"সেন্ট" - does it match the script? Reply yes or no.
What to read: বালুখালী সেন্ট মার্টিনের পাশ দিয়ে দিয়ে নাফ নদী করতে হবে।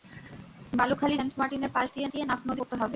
yes